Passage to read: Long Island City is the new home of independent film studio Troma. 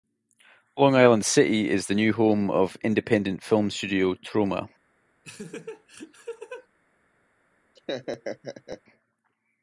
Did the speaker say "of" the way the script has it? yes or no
yes